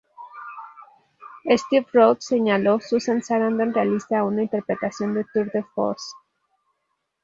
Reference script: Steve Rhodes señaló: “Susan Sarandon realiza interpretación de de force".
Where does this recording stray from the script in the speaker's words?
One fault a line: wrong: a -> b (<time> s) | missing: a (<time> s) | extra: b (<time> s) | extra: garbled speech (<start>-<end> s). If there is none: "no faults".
extra: una (4.2 s)
extra: tour (5.3 s)